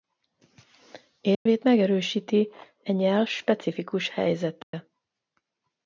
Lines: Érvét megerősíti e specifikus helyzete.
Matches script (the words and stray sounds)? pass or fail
fail